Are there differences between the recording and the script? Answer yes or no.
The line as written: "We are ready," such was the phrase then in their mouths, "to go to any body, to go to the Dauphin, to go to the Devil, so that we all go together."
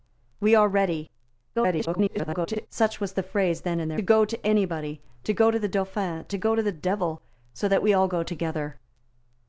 yes